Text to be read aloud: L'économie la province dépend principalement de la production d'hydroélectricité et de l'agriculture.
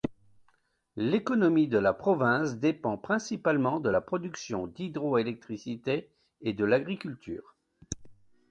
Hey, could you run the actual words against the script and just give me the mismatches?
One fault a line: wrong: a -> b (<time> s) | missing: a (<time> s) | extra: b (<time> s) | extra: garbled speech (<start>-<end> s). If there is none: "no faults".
extra: de (1.7 s)